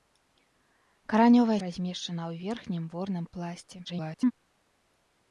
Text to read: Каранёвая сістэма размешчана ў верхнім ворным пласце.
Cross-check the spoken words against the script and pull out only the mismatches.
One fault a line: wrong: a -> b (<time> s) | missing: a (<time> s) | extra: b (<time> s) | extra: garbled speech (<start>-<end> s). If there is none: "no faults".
missing: сістэма (1.6 s)
extra: garbled speech (3.8-4.3 s)